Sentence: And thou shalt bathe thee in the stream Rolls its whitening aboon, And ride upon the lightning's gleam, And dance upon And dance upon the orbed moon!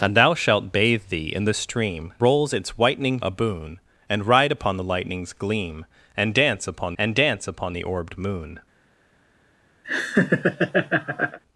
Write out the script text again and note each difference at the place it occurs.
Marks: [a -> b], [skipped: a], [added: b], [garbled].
And thou shalt bathe thee in the stream Rolls its whitening aboon, And ride upon the lightning's gleam, And dance upon And dance upon the orbed moon!